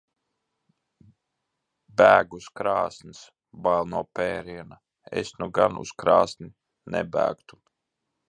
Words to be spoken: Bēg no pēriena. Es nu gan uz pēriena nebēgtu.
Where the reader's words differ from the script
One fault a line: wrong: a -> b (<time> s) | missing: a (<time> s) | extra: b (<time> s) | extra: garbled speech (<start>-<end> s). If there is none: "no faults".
extra: uz krāsns Bail (2.4 s)
wrong: pēriena -> krāsni (6.0 s)